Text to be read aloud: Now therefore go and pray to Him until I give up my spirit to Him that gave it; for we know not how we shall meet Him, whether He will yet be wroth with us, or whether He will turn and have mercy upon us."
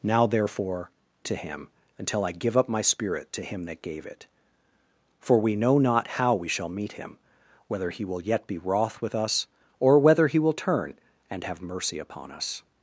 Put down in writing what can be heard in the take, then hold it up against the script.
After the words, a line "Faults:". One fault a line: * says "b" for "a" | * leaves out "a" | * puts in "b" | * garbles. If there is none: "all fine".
Now therefore to Him until I give up my spirit to Him that gave it; for we know not how we shall meet Him, whether He will yet be wroth with us, or whether He will turn and have mercy upon us."
Faults:
* leaves out "go and pray"